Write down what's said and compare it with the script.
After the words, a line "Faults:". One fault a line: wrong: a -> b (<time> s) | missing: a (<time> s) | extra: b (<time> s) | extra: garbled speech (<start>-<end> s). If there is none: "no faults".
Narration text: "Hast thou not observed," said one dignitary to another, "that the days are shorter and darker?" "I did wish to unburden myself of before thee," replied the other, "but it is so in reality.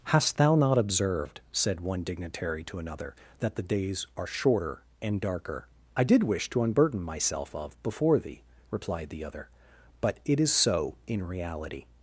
"Hast thou not observed," said one dignitary to another, "that the days are shorter and darker?" "I did wish to unburden myself of before thee," replied the other, "but it is so in reality.
Faults:
no faults